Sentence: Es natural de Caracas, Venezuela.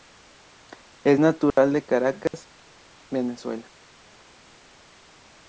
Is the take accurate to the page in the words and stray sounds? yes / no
no